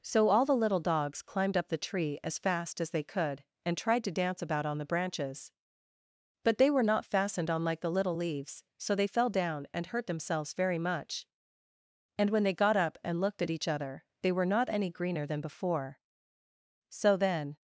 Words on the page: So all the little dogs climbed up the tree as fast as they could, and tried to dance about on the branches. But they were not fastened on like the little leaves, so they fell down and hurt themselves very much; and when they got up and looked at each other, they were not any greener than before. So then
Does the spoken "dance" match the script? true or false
true